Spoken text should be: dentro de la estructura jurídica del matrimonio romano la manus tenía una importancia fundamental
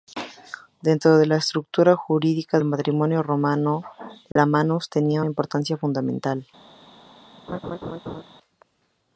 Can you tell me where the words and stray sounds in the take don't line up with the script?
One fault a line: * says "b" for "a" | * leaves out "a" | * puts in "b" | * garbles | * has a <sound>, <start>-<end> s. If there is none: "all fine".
* leaves out "del"
* has a dropout, 4.3-4.4 s
* leaves out "una"
* has a laugh, 7.5-8.2 s